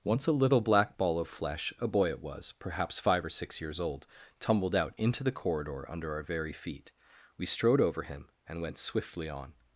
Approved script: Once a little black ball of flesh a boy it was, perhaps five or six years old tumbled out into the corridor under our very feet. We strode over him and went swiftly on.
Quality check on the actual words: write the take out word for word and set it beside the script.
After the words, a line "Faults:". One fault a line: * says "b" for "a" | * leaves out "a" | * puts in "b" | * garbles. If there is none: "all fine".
Once a little black ball of flesh a boy it was, perhaps five or six years old tumbled out into the corridor under our very feet. We strode over him and went swiftly on.
Faults:
all fine